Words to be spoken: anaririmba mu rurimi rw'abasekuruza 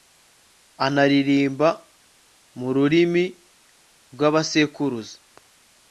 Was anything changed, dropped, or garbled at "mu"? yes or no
no